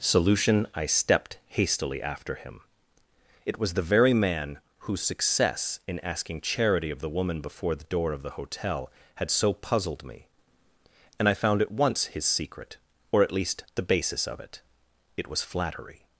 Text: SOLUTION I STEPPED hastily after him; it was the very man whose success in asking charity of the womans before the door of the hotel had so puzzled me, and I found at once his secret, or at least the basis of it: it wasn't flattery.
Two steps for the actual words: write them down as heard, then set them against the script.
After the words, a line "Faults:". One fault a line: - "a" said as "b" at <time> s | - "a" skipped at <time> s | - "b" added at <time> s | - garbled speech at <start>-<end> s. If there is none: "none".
SOLUTION I STEPPED hastily after him; it was the very man whose success in asking charity of the woman before the door of the hotel had so puzzled me, and I found at once his secret, or at least the basis of it: it was flattery.
Faults:
- "womans" said as "woman" at 7.1 s
- "wasn't" said as "was" at 15.3 s